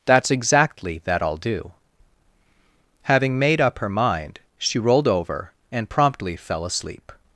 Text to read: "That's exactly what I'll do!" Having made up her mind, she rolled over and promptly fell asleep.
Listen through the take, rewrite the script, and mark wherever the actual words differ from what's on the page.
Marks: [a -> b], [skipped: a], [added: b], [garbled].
"That's exactly [what -> that] I'll do!" Having made up her mind, she rolled over and promptly fell asleep.